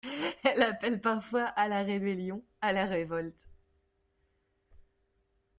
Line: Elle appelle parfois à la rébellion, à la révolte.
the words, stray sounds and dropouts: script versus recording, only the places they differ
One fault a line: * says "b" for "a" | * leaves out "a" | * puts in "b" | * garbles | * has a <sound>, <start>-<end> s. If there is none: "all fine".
all fine